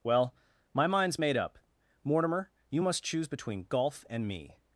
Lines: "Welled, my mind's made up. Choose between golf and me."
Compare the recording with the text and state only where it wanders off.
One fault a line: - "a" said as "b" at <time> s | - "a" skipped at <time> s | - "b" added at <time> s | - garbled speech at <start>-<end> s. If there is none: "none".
- "Welled" said as "Well" at 0.0 s
- "Mortimer you must" added at 2.0 s